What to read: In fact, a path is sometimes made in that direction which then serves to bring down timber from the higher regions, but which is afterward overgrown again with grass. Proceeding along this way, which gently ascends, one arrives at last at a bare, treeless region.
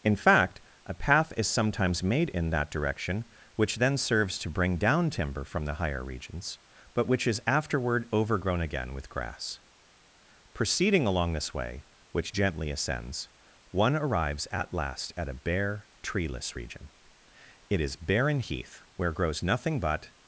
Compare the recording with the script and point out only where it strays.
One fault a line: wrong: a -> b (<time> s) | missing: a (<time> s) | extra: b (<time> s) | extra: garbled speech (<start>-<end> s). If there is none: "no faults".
extra: It is barren heath where grows nothing but (17.7 s)